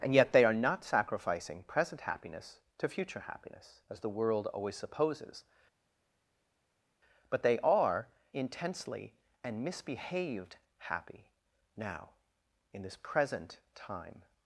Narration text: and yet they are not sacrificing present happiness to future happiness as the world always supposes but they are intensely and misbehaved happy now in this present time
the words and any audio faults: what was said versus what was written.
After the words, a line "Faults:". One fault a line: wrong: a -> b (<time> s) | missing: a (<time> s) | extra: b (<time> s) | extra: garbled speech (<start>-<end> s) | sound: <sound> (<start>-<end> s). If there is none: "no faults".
and yet they are not sacrificing present happiness to future happiness as the world always supposes but they are intensely and misbehaved happy now in this present time
Faults:
no faults